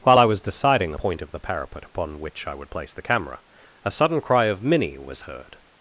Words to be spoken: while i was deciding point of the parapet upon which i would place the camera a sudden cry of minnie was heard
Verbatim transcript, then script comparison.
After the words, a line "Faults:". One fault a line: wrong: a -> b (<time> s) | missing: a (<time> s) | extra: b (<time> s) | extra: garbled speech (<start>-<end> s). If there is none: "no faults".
while i was deciding point of the parapet upon which i would place the camera a sudden cry of minnie was heard
Faults:
no faults